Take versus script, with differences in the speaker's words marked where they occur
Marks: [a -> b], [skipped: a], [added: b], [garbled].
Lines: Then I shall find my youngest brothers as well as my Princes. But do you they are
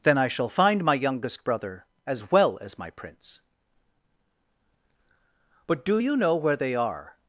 Then I shall find my youngest [brothers -> brother] as well as my [Princes. -> Prince] But do you [added: know where] they are